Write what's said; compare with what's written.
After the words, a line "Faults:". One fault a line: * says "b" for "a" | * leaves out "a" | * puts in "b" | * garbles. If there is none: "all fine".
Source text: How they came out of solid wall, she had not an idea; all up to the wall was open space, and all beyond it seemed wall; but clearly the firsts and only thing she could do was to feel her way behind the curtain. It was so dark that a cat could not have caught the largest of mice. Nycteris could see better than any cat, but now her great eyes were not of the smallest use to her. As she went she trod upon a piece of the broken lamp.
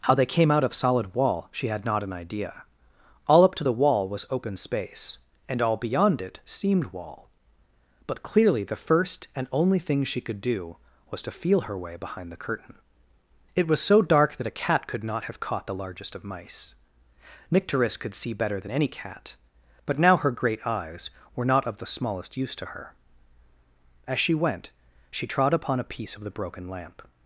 How they came out of solid wall, she had not an idea; all up to the wall was open space, and all beyond it seemed wall; but clearly the first and only thing she could do was to feel her way behind the curtain. It was so dark that a cat could not have caught the largest of mice. Nycteris could see better than any cat, but now her great eyes were not of the smallest use to her. As she went she trod upon a piece of the broken lamp.
Faults:
* says "first" for "firsts"